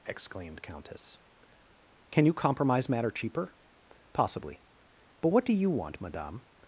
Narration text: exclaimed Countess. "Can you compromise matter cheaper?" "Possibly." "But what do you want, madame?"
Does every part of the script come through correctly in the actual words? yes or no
yes